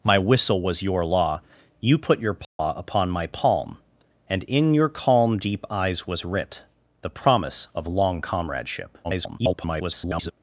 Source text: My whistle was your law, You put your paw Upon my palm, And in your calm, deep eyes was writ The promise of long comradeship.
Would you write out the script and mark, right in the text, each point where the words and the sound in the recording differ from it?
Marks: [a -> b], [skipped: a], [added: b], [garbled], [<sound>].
My whistle was your law, You put your paw [dropout] Upon my palm, And in your calm, deep eyes was writ The promise of long comradeship. [garbled]